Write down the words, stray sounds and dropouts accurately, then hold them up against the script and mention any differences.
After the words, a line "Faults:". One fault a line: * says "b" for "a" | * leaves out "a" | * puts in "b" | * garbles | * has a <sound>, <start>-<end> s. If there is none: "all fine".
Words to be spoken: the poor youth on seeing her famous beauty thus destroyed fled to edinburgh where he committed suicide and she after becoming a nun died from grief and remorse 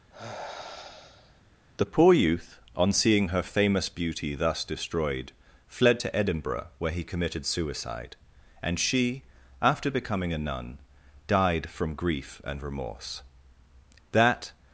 the poor youth on seeing her famous beauty thus destroyed fled to edinburgh where he committed suicide and she after becoming a nun died from grief and remorse that
Faults:
* has a sigh, 0.1-1.4 s
* puts in "that"